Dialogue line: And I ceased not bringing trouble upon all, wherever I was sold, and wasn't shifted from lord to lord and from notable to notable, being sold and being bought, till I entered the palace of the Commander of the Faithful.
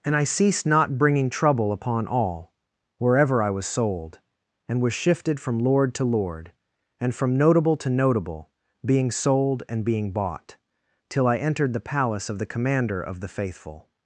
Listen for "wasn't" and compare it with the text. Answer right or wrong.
wrong